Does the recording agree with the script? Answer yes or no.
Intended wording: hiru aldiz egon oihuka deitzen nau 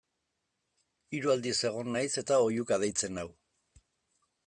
no